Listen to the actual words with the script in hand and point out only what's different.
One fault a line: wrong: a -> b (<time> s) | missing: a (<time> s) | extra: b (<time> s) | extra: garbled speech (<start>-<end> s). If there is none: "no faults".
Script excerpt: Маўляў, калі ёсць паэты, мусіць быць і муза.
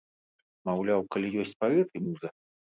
missing: мусіць быць і (1.9 s)